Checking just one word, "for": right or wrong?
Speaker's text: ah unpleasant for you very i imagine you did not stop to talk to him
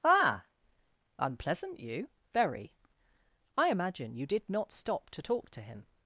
wrong